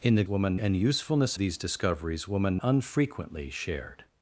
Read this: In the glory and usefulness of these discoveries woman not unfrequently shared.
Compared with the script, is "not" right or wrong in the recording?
wrong